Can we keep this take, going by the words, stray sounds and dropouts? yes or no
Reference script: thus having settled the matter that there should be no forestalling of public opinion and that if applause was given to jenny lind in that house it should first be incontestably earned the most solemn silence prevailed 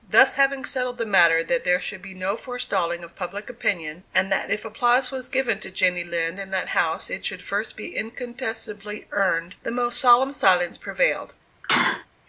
no